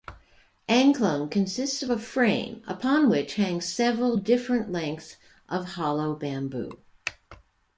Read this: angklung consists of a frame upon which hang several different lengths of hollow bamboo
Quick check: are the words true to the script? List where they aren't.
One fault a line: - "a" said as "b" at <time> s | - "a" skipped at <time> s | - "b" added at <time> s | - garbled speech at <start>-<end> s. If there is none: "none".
none